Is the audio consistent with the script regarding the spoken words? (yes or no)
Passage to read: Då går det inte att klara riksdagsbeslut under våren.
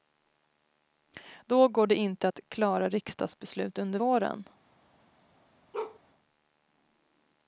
yes